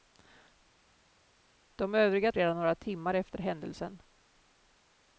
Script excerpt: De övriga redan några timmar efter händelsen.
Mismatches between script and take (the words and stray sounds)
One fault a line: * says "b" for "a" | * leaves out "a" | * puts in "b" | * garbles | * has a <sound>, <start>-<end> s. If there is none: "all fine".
all fine